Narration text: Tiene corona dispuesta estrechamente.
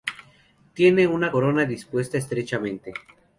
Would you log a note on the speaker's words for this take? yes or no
yes